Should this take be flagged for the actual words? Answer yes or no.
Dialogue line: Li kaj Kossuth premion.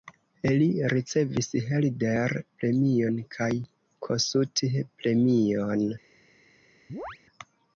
yes